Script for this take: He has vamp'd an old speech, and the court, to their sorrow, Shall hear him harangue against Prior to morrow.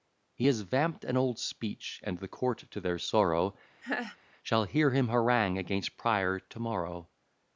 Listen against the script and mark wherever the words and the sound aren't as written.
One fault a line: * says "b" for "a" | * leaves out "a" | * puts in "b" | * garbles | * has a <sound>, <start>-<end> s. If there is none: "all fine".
* has a laugh, 3.8-4.2 s